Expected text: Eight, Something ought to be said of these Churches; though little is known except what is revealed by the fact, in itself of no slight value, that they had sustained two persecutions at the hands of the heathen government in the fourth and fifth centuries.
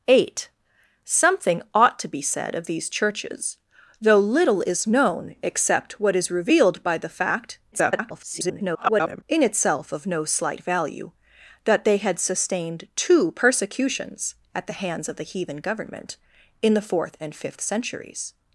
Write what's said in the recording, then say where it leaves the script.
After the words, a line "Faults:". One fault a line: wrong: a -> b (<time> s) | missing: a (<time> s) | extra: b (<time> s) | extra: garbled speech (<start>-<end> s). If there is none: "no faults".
Eight, Something ought to be said of these Churches; though little is known except what is revealed by the fact, [garbled] in itself of no slight value, that they had sustained two persecutions at the hands of the heathen government in the fourth and fifth centuries.
Faults:
extra: garbled speech (7.7-9.2 s)